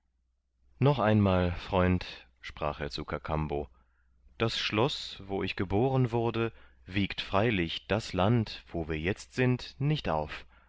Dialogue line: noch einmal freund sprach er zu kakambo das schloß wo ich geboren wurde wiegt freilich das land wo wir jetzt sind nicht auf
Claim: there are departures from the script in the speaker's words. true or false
false